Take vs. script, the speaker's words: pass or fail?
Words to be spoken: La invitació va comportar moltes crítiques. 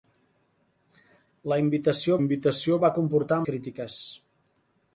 fail